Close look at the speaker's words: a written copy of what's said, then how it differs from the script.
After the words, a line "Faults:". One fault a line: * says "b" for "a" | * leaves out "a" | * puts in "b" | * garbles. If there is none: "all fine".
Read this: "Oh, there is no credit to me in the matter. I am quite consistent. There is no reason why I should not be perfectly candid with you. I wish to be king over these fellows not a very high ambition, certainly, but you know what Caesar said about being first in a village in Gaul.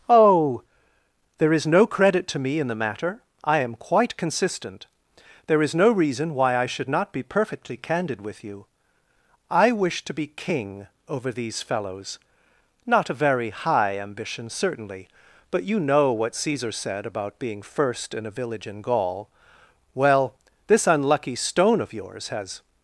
"Oh, there is no credit to me in the matter. I am quite consistent. There is no reason why I should not be perfectly candid with you. I wish to be king over these fellows not a very high ambition, certainly, but you know what Caesar said about being first in a village in Gaul. Well, this unlucky stone of yours has
Faults:
* puts in "Well this unlucky stone of yours has"